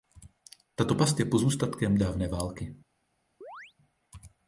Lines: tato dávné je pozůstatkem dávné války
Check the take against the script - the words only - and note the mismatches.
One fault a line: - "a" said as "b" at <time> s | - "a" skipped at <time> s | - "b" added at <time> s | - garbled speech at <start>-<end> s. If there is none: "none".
- "dávné" said as "past" at 0.9 s